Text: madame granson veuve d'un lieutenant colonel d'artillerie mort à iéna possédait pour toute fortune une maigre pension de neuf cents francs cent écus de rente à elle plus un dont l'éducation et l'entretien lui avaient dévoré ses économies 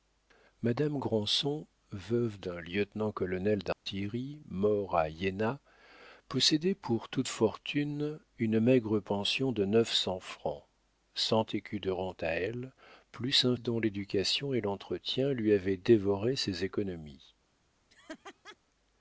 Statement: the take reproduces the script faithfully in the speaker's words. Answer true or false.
true